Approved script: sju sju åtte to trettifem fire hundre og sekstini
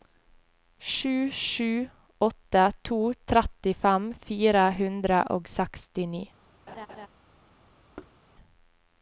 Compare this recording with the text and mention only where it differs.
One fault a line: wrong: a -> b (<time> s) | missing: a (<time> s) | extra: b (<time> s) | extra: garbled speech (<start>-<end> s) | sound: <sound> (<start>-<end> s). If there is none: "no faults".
sound: laugh (6.7-7.1 s)
sound: thud (8.0-8.2 s)